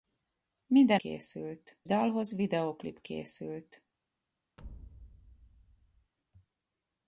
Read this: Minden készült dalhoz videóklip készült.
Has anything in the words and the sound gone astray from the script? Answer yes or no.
yes